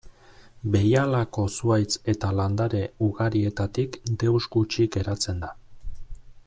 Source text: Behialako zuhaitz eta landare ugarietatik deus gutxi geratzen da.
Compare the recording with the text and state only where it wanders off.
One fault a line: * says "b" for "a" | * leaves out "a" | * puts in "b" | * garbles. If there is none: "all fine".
all fine